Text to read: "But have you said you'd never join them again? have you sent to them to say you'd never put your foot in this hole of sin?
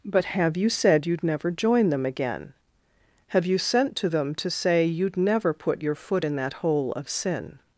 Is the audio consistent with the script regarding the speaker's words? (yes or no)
no